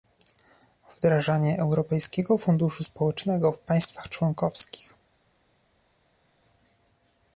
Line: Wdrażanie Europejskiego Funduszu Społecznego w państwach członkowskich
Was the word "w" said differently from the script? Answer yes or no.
no